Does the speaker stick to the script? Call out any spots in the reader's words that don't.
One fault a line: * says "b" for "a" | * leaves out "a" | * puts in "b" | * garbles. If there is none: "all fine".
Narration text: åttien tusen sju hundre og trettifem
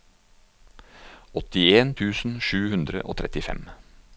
all fine